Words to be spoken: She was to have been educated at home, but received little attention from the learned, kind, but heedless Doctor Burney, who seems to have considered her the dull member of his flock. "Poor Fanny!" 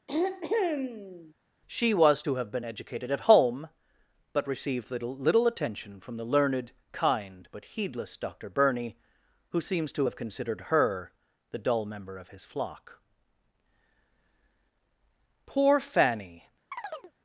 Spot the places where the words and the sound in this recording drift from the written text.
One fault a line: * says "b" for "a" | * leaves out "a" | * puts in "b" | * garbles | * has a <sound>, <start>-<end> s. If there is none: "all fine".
* has a throat clearing, 0.1-1.3 s
* puts in "little"
* has a chirp, 16.7-17.1 s